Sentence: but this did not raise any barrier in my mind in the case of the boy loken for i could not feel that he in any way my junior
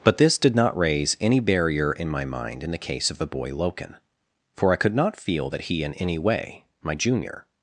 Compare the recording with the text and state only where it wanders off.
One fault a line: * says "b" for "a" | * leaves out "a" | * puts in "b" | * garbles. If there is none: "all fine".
all fine